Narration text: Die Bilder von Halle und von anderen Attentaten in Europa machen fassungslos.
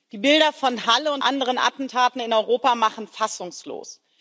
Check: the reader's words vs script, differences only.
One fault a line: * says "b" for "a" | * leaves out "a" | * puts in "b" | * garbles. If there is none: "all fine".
* leaves out "von"